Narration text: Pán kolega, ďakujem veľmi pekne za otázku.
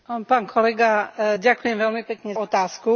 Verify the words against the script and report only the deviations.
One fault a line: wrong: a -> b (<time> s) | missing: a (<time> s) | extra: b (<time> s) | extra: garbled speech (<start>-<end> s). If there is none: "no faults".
missing: za (2.3 s)